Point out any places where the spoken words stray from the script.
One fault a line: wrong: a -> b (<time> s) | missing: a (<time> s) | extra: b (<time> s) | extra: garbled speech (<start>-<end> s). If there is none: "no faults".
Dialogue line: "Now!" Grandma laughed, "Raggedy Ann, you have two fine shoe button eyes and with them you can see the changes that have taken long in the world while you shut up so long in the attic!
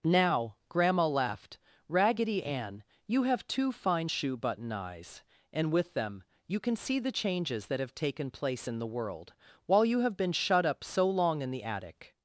wrong: long -> place (8.3 s)
extra: have been (10.0 s)